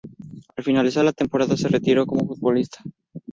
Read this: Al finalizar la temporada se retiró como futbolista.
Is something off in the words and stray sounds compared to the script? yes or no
no